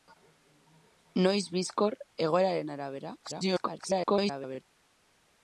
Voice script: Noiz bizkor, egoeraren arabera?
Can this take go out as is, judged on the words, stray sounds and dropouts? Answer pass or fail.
fail